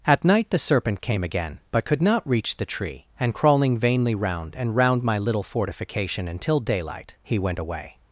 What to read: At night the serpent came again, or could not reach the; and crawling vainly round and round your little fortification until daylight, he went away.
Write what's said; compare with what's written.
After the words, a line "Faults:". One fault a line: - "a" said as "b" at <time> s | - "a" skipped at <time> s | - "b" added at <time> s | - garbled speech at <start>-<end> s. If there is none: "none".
At night the serpent came again, but could not reach the tree; and crawling vainly round and round my little fortification until daylight, he went away.
Faults:
- "or" said as "but" at 1.7 s
- "tree" added at 2.7 s
- "your" said as "my" at 5.0 s